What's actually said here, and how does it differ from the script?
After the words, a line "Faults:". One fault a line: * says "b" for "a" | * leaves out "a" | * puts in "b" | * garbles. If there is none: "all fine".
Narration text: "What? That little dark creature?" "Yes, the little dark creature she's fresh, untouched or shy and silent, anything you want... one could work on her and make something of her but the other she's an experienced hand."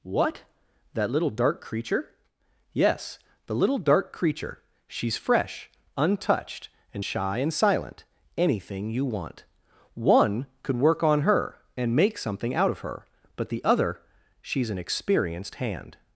"What? That little dark creature?" "Yes, the little dark creature she's fresh, untouched and shy and silent, anything you want... one could work on her and make something out of her but the other she's an experienced hand."
Faults:
* says "and" for "or"
* puts in "out"